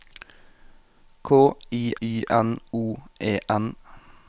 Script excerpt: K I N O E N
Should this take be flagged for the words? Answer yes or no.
yes